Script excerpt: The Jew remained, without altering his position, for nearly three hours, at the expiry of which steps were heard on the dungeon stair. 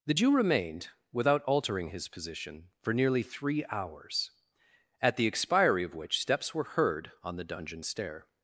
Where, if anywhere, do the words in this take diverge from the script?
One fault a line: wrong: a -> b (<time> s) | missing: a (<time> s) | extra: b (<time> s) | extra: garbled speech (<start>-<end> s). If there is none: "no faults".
no faults